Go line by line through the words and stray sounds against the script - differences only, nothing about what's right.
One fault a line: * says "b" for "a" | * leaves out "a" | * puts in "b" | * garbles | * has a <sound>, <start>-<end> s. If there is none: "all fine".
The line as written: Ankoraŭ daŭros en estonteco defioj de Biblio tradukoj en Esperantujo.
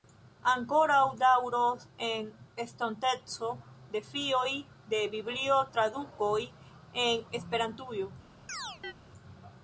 * has a chirp, 8.5-8.9 s